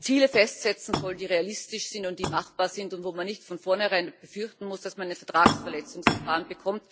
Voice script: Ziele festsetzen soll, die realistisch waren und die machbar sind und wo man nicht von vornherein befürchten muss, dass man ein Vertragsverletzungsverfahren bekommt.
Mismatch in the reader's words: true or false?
true